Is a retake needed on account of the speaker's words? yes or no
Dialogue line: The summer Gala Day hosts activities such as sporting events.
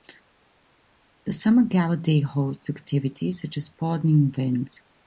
no